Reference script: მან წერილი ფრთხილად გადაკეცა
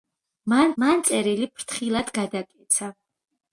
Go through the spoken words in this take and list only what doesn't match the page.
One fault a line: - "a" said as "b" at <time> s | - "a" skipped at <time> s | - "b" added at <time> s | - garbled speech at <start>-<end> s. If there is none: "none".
- "მან" added at 0.8 s